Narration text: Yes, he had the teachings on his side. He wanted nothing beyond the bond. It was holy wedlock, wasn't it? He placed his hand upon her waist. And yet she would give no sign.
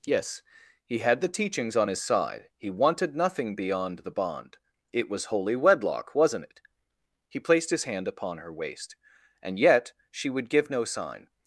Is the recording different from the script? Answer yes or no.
no